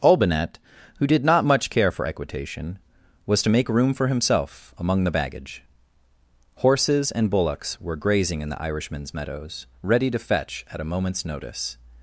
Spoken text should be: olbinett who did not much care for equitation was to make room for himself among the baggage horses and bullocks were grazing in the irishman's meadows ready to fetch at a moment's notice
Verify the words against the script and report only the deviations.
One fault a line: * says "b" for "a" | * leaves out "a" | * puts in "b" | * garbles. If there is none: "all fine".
all fine